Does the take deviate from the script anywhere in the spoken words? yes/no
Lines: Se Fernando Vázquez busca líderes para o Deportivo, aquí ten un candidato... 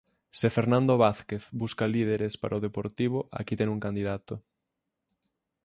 no